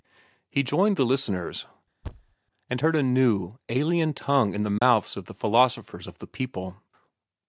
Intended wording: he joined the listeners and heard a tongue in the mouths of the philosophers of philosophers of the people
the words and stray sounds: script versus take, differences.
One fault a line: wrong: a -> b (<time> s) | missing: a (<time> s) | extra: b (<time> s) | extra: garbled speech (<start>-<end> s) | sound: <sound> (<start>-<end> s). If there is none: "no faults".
sound: thud (2.0-2.4 s)
extra: new alien (3.0 s)
sound: dropout (4.8-4.8 s)
missing: philosophers of (6.2 s)